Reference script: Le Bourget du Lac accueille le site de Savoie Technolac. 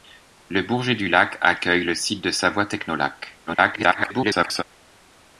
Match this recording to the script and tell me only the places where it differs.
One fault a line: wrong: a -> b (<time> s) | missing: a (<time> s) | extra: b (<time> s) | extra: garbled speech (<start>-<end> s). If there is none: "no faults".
extra: garbled speech (3.5-4.6 s)